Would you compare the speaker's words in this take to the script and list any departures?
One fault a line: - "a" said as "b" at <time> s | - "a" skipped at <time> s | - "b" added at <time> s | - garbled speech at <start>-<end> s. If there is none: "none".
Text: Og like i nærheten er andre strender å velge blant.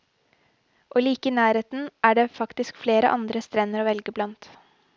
- "det faktisk flere" added at 2.2 s